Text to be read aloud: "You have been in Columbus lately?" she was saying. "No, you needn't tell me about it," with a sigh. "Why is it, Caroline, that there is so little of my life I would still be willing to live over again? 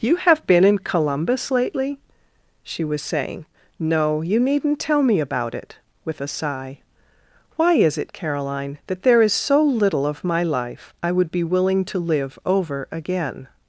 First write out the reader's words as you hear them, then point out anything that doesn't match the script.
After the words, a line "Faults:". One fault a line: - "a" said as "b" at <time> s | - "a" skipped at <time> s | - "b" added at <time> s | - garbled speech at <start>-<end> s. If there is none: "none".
"You have been in Columbus lately?" she was saying. "No, you needn't tell me about it," with a sigh. "Why is it, Caroline, that there is so little of my life I would be willing to live over again?
Faults:
- "still" skipped at 11.3 s